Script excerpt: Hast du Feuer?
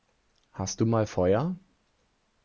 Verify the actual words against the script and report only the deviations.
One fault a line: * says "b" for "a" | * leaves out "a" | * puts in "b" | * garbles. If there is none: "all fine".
* puts in "mal"